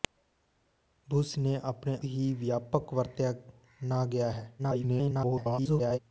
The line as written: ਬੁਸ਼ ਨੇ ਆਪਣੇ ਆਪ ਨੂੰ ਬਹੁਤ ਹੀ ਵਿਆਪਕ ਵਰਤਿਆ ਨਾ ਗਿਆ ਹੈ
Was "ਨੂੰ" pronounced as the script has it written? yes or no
no